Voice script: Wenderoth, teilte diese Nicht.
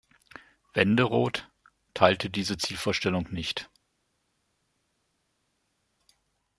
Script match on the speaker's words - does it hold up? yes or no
no